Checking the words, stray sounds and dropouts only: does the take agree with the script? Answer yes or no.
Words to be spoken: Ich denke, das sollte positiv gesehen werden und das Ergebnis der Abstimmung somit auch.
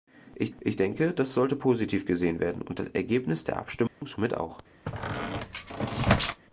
no